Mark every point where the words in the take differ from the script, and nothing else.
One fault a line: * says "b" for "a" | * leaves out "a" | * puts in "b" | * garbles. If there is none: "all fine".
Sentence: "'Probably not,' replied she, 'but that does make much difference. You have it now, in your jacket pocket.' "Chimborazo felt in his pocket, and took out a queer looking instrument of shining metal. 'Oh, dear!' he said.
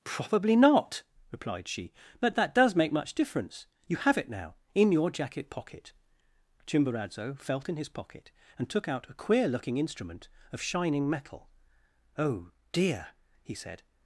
all fine